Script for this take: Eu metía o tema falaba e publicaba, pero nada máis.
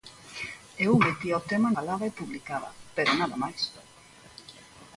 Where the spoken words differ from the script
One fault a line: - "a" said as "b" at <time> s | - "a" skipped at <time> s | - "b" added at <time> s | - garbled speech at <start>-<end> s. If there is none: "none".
none